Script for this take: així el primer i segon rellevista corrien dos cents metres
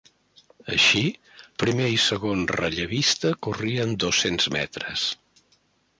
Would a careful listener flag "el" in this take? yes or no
yes